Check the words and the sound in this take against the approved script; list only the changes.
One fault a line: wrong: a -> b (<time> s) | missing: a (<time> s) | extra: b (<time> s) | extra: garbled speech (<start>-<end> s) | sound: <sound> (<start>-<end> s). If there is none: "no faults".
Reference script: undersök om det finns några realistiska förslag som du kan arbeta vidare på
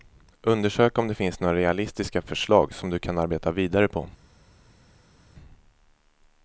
no faults